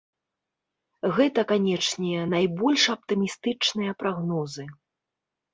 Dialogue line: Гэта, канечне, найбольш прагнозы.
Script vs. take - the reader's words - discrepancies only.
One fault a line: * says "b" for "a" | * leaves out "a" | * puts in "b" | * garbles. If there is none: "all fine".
* puts in "аптымістычныя"